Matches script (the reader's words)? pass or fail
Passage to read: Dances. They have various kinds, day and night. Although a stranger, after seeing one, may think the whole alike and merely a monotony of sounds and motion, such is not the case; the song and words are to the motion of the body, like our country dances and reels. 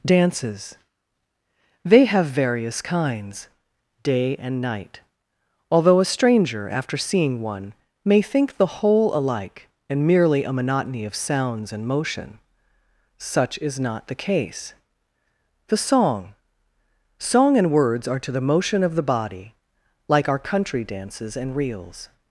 fail